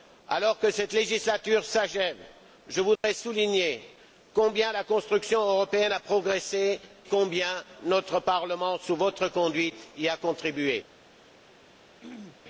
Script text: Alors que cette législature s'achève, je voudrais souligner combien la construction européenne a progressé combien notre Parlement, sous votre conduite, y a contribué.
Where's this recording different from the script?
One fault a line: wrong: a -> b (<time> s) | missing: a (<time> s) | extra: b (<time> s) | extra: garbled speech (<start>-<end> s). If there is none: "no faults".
no faults